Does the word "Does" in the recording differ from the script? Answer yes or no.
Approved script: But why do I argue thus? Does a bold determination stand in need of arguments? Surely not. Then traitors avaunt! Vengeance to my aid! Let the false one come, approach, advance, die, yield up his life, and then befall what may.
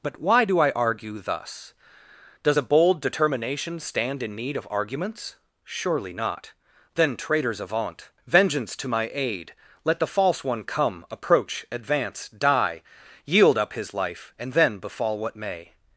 no